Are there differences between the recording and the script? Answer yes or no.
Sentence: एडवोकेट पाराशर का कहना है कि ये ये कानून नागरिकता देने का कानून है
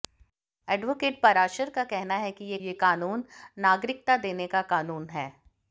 no